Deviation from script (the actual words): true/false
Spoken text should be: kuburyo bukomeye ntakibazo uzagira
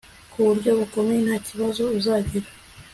false